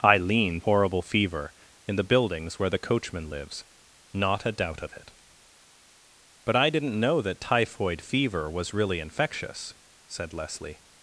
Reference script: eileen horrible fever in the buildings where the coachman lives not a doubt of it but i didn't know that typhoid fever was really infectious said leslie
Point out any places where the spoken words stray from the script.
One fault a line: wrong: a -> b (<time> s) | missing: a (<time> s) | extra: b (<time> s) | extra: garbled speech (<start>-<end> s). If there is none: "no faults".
no faults